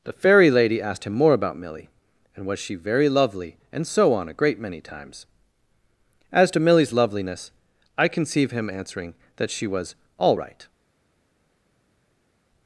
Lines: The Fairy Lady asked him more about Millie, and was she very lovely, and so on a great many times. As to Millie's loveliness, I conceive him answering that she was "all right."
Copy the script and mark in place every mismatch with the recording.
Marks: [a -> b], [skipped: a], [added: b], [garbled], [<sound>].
The Fairy Lady asked him more about Millie, and was she very lovely, and so on a great many times. As to Millie's loveliness, I conceive him answering that she was "all right."